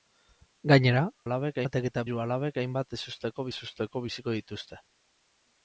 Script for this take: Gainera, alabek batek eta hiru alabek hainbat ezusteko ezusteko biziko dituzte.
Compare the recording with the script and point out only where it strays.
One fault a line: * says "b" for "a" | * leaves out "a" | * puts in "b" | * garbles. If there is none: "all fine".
all fine